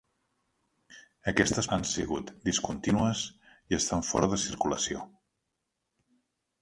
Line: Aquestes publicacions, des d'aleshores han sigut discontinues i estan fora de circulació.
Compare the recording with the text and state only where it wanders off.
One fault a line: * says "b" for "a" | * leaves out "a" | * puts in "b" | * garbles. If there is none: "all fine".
* leaves out "publicacions des d'aleshores"